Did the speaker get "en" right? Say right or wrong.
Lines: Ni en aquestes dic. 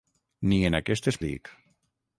right